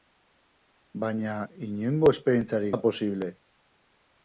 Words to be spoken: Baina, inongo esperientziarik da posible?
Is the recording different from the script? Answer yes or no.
no